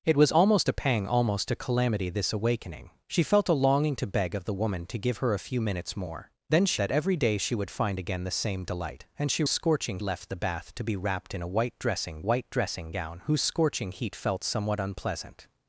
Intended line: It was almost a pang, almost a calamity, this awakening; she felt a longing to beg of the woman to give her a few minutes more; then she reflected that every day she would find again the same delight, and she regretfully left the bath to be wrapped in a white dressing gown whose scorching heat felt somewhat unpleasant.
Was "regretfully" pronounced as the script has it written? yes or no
no